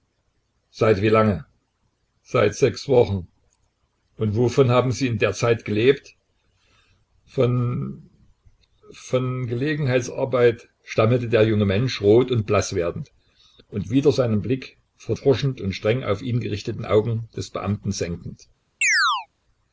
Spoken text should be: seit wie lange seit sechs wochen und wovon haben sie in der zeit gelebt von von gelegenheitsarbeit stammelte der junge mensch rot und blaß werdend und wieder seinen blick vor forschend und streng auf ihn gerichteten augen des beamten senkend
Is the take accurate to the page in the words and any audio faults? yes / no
no